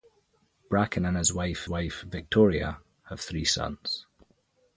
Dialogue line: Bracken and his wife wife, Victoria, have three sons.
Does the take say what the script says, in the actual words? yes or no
yes